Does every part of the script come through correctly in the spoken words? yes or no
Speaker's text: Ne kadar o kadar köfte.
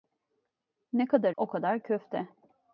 yes